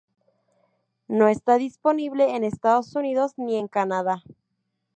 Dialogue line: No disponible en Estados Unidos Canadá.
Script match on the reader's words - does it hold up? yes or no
no